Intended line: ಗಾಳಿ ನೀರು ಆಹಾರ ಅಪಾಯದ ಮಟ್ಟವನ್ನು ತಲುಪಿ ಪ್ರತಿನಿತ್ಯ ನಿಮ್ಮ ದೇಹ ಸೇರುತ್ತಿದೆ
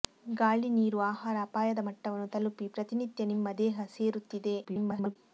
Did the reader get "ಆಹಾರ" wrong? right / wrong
right